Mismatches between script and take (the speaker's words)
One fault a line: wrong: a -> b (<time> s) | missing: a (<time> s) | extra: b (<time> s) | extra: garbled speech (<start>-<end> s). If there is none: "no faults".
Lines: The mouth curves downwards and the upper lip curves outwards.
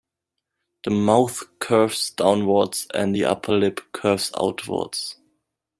no faults